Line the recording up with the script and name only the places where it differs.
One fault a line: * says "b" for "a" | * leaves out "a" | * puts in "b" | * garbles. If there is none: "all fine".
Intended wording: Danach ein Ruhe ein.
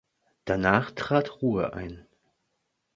* says "trat" for "ein"